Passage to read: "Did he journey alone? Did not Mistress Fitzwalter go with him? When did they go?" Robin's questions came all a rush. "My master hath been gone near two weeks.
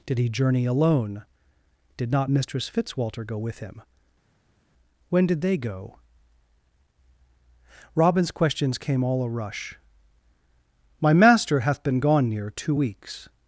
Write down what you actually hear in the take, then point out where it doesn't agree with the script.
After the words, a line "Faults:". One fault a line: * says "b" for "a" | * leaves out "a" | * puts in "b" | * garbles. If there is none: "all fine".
"Did he journey alone? Did not Mistress Fitzwalter go with him? When did they go?" Robin's questions came all a rush. "My master hath been gone near two weeks.
Faults:
all fine